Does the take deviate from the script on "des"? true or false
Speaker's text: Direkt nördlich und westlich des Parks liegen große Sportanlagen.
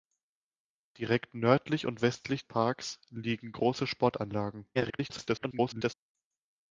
true